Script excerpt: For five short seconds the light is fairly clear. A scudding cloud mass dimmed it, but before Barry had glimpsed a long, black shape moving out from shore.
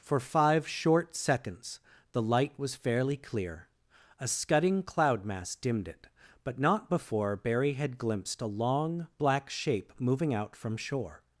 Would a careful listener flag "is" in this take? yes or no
yes